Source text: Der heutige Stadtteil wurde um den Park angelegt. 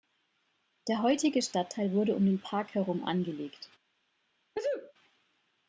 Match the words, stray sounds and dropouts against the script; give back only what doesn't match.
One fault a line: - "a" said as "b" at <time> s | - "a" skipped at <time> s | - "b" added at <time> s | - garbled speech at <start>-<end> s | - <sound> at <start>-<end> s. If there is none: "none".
- "herum" added at 2.7 s
- sneeze at 4.5-4.9 s